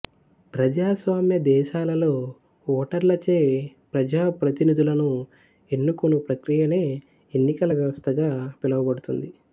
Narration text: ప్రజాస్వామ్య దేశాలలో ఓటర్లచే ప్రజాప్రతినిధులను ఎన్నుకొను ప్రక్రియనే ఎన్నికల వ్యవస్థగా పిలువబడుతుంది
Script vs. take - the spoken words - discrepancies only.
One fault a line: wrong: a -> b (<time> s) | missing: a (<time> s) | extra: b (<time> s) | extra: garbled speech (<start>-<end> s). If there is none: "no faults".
no faults